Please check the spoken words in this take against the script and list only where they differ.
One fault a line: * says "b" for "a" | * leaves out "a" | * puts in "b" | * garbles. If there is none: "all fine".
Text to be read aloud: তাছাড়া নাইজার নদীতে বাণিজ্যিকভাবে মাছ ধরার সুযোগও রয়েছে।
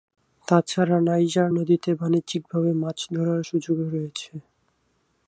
all fine